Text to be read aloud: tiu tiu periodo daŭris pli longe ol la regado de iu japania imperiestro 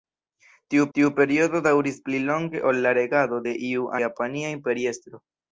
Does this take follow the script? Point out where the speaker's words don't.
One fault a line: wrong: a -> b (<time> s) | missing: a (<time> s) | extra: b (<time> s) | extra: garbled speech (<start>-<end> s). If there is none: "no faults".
no faults